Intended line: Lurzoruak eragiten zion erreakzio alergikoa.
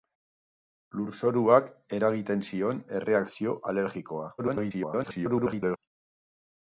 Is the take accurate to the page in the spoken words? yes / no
no